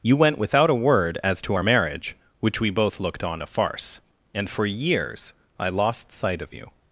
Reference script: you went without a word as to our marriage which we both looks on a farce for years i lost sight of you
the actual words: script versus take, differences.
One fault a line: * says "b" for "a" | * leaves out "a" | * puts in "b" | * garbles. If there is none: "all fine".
* says "looked" for "looks"
* puts in "and"